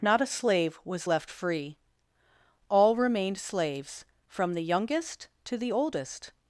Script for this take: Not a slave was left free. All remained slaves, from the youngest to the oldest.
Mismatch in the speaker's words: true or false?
false